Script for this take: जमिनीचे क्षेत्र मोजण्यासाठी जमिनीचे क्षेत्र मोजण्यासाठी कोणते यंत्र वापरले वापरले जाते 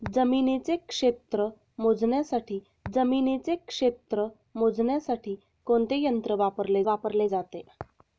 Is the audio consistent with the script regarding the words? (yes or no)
yes